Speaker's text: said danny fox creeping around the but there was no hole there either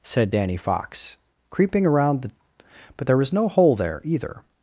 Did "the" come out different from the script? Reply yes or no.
no